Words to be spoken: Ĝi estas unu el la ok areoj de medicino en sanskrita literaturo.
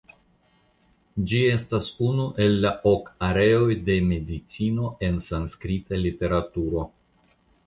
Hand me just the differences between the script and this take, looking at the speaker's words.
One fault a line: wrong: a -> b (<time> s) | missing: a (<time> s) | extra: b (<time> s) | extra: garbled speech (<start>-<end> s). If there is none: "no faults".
no faults